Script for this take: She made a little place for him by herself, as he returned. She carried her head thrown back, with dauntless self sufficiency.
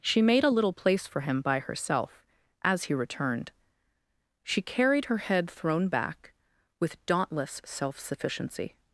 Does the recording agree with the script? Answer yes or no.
yes